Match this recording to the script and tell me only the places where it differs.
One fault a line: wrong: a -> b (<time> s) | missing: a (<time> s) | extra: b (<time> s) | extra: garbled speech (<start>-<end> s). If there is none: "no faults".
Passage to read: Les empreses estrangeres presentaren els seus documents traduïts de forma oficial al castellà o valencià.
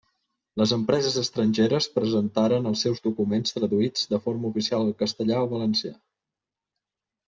no faults